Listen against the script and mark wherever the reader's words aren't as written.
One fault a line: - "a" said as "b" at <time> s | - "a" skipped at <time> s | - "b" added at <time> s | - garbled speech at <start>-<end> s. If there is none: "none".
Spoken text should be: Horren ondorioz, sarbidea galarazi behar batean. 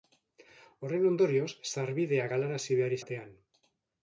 none